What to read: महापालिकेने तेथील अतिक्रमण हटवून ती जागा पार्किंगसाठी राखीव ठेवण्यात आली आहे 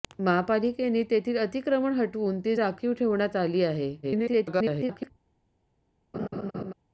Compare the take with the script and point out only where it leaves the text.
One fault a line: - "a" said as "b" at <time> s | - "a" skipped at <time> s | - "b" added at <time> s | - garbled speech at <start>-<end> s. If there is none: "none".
- "जागा पार्किंगसाठी" skipped at 2.5 s
- garbled speech at 4.0-5.1 s